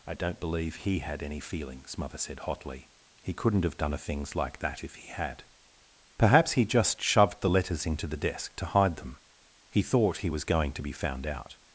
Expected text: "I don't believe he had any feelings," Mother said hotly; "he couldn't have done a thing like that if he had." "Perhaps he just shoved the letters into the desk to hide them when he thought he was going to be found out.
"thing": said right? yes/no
no